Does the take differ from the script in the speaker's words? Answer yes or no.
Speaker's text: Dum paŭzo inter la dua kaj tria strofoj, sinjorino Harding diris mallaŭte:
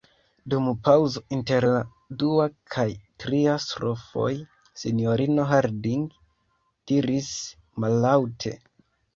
no